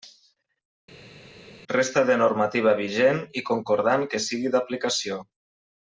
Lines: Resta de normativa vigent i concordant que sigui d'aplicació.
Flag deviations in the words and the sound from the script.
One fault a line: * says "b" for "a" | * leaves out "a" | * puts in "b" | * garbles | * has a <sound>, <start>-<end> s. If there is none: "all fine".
all fine